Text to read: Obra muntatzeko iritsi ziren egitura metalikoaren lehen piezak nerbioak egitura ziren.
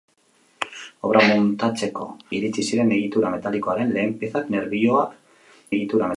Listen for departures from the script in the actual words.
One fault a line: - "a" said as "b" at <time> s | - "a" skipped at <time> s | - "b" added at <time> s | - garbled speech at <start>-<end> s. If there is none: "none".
none